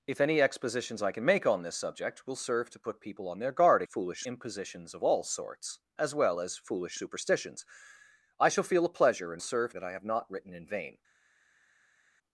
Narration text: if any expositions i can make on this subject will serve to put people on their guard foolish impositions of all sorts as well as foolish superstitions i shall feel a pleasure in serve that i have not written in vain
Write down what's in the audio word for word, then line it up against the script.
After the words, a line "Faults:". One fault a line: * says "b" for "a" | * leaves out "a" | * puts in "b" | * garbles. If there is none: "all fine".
if any expositions i can make on this subject will serve to put people on their guard foolish impositions of all sorts as well as foolish superstitions i shall feel a pleasure in serve that i have not written in vain
Faults:
all fine